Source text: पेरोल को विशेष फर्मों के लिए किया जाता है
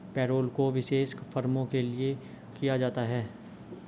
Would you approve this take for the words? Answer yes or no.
yes